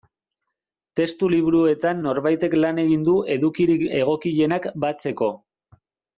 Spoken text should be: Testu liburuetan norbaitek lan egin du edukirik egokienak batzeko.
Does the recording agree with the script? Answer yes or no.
yes